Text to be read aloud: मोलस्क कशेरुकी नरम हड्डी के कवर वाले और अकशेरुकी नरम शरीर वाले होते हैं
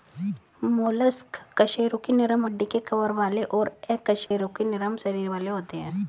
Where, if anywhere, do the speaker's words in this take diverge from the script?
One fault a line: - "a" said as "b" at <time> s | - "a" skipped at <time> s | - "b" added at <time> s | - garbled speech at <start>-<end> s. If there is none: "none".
none